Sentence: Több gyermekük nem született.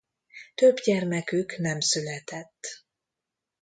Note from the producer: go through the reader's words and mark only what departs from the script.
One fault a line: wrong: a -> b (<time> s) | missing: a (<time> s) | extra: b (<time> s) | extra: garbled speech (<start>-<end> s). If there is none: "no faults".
no faults